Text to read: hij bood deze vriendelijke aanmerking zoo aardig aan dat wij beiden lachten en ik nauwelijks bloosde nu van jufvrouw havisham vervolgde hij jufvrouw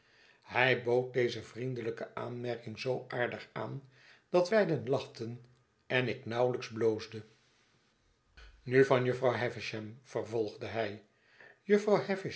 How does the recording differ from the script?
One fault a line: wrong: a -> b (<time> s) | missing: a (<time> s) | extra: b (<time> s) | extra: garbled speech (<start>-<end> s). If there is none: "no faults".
missing: wij (4.5 s)